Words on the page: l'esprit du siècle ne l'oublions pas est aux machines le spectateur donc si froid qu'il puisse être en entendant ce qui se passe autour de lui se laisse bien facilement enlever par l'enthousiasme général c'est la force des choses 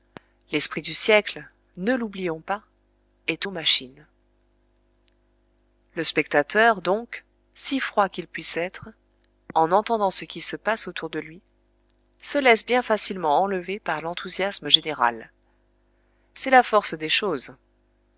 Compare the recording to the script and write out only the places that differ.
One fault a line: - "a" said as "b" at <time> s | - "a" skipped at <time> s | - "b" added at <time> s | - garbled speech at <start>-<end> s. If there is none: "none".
none